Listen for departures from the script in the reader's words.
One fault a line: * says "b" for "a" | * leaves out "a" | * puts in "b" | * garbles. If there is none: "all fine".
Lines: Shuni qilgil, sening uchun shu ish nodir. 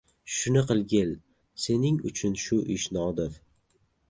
all fine